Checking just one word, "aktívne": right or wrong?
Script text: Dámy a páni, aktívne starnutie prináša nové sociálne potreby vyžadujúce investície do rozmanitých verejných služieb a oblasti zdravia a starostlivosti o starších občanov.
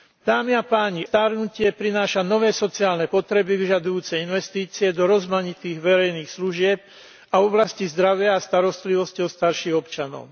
wrong